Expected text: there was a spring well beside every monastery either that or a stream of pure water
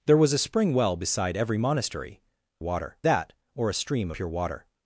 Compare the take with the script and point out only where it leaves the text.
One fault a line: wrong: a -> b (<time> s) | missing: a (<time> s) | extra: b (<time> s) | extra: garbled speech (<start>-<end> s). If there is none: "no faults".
wrong: either -> water (2.6 s)
missing: of (4.1 s)